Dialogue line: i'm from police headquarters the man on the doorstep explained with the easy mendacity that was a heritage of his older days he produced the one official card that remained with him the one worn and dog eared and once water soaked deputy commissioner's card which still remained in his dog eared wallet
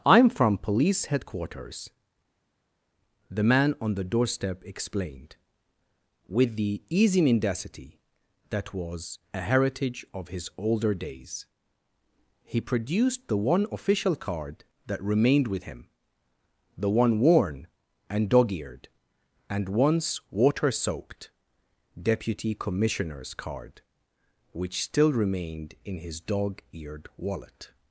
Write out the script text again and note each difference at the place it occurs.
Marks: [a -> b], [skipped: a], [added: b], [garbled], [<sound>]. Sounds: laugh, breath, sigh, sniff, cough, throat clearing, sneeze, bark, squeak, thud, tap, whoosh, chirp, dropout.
i'm from police headquarters the man on the doorstep explained with the easy mendacity that was a heritage of his older days he produced the one official card that remained with him the one worn and dog eared and once water soaked deputy commissioner's card which still remained in his dog eared wallet